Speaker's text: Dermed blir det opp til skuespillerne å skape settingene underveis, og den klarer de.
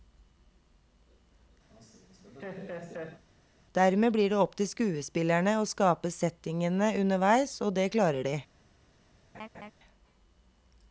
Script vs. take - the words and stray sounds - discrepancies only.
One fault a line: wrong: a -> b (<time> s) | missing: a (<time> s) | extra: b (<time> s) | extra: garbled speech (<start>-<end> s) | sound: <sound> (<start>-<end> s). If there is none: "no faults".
sound: laugh (1.7-3.2 s)
wrong: den -> det (7.8 s)
sound: laugh (9.3-9.7 s)